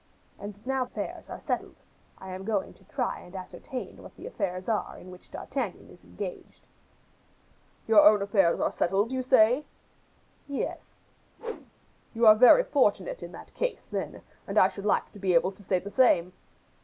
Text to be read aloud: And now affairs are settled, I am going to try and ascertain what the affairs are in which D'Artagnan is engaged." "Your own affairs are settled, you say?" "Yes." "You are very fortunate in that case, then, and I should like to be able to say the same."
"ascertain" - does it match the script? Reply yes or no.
yes